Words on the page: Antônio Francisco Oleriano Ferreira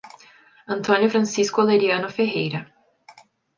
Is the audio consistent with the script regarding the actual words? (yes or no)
yes